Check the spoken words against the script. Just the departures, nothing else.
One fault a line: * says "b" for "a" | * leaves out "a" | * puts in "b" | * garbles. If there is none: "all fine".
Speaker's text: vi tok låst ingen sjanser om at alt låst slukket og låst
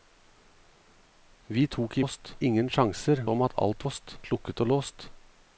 all fine